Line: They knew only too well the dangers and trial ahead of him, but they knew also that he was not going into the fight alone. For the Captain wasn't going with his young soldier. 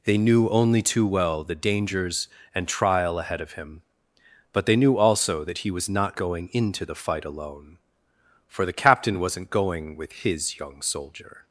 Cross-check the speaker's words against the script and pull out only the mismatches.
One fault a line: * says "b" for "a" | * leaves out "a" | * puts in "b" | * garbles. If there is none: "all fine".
all fine